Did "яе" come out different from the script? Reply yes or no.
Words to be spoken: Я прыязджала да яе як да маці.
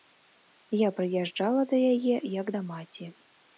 no